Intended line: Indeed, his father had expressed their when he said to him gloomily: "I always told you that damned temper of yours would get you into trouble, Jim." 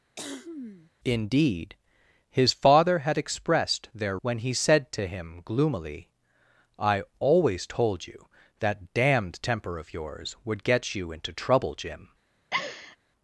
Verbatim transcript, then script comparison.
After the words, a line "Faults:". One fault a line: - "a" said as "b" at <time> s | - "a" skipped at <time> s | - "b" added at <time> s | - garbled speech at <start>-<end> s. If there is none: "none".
Indeed, his father had expressed their when he said to him gloomily: "I always told you that damned temper of yours would get you into trouble, Jim."
Faults:
none